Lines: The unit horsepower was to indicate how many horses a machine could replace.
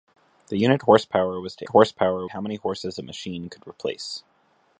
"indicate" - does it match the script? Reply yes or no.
no